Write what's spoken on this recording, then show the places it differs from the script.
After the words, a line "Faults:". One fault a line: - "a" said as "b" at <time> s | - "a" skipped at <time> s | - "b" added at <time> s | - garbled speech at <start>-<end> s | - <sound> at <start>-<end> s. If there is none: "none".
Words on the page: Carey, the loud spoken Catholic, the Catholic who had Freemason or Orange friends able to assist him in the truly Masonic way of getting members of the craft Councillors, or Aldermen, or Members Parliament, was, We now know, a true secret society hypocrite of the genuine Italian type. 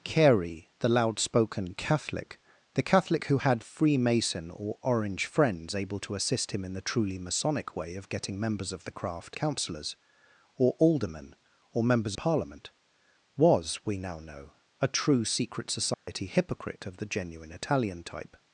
Carey, the loud spoken Catholic, the Catholic who had Freemason or Orange friends able to assist him in the truly Masonic way of getting members of the craft Councillors, or Aldermen, or Members Parliament, was, We now know, a true secret society hypocrite of the genuine Italian type.
Faults:
- dropout at 15.9-16.1 s